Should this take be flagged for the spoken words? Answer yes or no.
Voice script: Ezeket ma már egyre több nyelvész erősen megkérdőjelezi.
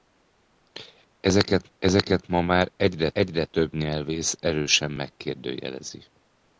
yes